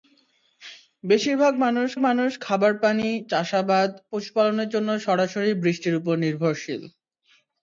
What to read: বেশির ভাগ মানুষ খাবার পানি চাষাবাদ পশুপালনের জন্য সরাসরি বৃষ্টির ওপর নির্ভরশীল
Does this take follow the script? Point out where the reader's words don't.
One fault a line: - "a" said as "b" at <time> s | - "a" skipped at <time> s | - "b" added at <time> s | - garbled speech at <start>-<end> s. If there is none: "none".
- "মানুষ" added at 2.0 s